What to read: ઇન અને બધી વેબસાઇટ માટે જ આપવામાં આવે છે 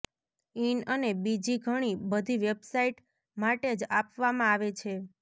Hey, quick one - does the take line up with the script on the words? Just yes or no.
no